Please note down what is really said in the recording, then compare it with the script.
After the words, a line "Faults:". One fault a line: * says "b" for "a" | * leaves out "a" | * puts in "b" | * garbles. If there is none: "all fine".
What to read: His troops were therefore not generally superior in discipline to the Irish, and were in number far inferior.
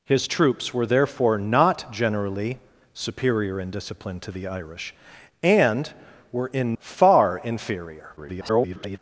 His troops were therefore not generally superior in discipline to the Irish, and were in far inferior. [garbled]
Faults:
* leaves out "number"
* garbles